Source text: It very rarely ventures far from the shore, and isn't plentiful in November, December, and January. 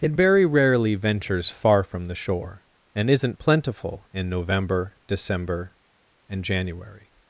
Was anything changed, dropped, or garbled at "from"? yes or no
no